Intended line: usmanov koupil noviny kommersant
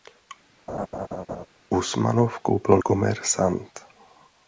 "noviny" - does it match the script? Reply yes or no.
no